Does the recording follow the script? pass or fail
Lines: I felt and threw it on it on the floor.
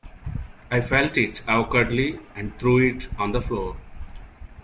fail